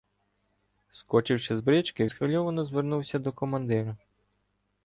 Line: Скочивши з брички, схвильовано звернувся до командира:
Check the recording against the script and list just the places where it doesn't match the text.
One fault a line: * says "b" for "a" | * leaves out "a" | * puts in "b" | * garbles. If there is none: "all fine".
all fine